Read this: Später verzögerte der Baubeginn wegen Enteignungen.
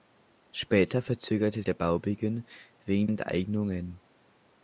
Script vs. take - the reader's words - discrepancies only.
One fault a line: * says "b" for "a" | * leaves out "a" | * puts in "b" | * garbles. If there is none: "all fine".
all fine